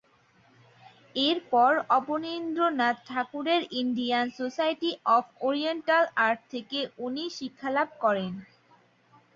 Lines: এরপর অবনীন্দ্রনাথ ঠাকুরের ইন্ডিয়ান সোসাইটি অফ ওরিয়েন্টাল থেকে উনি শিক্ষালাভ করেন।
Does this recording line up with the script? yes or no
no